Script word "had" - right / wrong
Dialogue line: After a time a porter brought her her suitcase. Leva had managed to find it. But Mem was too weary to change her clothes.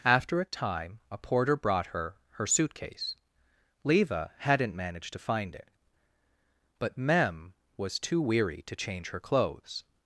wrong